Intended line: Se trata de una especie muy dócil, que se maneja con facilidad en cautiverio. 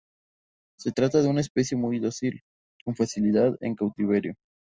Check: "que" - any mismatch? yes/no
yes